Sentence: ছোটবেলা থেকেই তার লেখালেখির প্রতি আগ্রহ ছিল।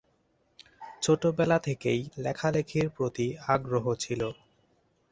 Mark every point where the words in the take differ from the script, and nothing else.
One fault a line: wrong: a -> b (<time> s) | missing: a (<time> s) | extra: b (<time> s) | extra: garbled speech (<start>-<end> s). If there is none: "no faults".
missing: তার (2.0 s)